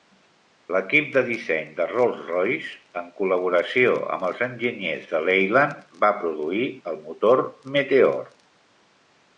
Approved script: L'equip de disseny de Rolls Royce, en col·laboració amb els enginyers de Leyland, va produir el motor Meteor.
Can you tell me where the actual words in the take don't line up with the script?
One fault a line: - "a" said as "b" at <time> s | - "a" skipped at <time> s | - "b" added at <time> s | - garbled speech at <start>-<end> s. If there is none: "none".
none